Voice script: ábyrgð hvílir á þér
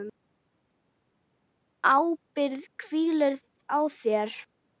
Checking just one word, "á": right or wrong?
right